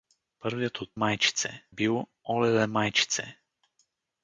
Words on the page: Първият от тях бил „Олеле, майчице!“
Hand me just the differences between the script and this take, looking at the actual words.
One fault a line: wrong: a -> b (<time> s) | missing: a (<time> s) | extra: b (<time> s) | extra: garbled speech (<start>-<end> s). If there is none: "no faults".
wrong: тях -> майчице (0.9 s)